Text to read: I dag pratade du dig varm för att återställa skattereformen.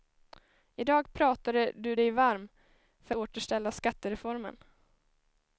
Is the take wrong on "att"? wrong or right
wrong